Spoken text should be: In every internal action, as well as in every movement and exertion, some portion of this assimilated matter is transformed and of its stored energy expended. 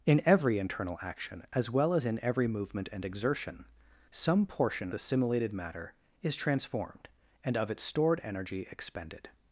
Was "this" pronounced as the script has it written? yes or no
no